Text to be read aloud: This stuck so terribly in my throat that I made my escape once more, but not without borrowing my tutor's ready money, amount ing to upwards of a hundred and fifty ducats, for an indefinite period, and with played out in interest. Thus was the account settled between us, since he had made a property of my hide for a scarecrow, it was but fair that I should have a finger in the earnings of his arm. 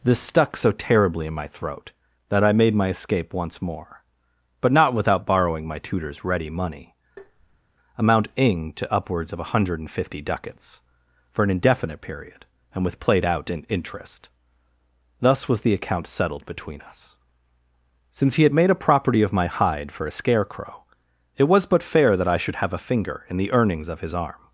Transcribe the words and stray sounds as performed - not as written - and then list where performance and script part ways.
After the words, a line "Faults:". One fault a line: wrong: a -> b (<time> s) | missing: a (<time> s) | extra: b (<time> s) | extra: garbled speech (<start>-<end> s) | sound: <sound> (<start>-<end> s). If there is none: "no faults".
This stuck so terribly in my throat that I made my escape once more, but not without borrowing my tutor's ready money, amount ing to upwards of a hundred and fifty ducats, for an indefinite period, and with played out in interest. Thus was the account settled between us, since he had made a property of my hide for a scarecrow, it was but fair that I should have a finger in the earnings of his arm.
Faults:
sound: tap (7.2-7.6 s)